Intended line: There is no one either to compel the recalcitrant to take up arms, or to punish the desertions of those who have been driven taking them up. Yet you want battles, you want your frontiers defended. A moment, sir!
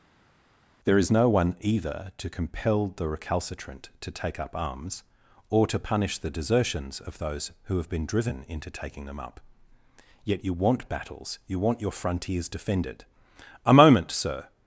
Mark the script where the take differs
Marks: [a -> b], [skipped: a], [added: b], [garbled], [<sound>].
There is no one either to compel the recalcitrant to take up arms, or to punish the desertions of those who have been driven [added: into] taking them up. Yet you want battles, you want your frontiers defended. A moment, sir!